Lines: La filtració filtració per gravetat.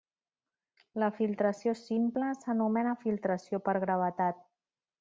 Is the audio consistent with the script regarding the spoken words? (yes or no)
no